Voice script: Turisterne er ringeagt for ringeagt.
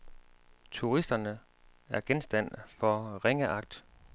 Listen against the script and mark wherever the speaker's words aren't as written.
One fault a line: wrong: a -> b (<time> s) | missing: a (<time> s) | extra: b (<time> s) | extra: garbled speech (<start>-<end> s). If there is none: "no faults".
wrong: ringeagt -> genstand (2.0 s)